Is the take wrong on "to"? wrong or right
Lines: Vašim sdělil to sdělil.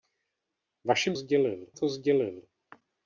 right